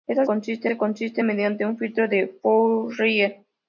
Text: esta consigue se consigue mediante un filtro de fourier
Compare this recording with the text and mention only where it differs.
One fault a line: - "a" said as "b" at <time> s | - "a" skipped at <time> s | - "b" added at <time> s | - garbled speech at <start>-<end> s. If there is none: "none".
none